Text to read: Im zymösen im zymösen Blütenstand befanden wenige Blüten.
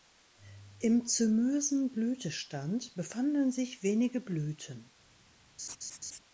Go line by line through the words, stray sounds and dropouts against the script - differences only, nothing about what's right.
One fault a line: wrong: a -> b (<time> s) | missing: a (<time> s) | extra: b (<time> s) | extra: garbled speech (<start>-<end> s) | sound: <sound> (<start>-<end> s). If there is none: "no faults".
missing: im zymösen (1.9 s)
extra: sich (3.5 s)
sound: laugh (5.6-6.2 s)